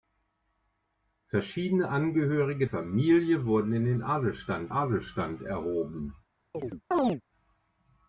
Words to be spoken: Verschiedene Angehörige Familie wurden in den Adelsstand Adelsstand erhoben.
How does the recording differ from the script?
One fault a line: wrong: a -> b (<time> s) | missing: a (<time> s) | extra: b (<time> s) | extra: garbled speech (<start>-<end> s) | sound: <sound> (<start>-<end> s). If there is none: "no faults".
sound: chirp (6.5-7.2 s)